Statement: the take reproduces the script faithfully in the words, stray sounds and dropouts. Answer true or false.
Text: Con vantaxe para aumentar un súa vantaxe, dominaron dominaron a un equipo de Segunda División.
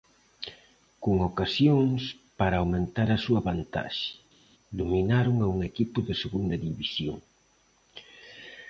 false